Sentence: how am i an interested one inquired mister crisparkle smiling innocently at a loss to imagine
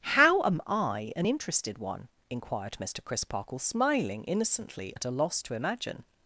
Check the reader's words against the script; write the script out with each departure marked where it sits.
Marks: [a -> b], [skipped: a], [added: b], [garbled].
how am i an interested one inquired mister crisparkle smiling innocently at a loss to imagine